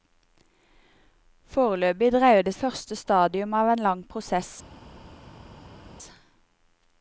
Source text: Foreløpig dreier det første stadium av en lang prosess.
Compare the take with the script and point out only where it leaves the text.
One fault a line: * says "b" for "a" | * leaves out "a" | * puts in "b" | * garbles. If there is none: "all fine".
all fine